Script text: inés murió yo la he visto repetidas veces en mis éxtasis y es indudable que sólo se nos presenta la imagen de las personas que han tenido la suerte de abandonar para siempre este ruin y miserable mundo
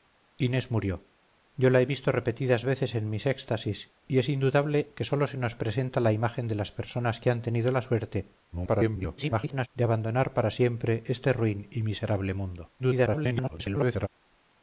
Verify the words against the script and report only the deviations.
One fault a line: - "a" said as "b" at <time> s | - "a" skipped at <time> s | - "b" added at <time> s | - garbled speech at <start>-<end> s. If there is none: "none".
- garbled speech at 8.5-9.7 s
- garbled speech at 12.8-14.1 s